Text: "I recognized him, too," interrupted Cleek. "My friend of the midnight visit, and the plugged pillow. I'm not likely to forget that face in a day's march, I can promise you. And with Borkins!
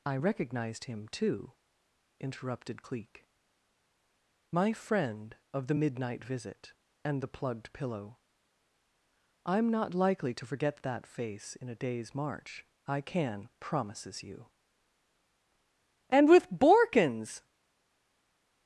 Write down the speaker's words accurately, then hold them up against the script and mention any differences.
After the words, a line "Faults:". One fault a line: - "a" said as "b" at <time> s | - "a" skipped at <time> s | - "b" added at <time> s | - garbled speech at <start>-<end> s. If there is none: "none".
"I recognized him, too," interrupted Cleek. "My friend of the midnight visit, and the plugged pillow. I'm not likely to forget that face in a day's march, I can promises you. And with Borkins!
Faults:
- "promise" said as "promises" at 13.6 s